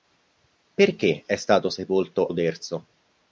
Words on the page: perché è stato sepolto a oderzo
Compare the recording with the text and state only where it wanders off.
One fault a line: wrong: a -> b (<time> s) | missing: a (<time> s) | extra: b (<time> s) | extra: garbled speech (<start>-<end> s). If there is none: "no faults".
missing: a (2.3 s)